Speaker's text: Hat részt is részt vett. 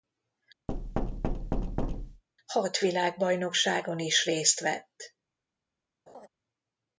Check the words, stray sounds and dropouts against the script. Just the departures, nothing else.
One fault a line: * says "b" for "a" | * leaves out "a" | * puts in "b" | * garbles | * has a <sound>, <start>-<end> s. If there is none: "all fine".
* has a thud, 0.7-2.2 s
* says "világbajnokságon" for "részt"
* has a laugh, 6.1-6.3 s